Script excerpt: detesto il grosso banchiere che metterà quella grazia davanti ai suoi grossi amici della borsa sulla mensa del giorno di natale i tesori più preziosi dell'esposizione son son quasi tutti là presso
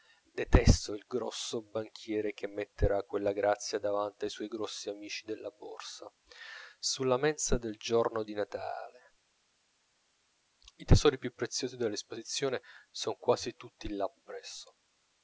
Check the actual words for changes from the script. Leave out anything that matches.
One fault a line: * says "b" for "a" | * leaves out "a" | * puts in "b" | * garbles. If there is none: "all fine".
* leaves out "son"